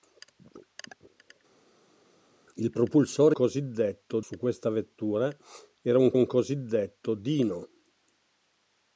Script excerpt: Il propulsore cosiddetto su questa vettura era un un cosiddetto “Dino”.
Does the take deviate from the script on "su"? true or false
false